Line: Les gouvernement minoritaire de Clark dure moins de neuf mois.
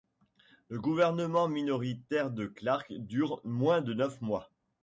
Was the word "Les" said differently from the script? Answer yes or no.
yes